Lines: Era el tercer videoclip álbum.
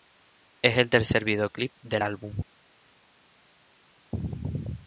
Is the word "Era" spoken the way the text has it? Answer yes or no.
no